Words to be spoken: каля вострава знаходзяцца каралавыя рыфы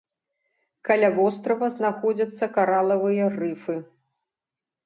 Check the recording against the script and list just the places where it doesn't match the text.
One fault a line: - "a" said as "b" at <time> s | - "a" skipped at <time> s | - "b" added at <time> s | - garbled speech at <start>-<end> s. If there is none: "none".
none